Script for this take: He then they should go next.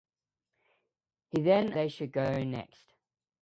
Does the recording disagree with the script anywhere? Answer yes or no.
no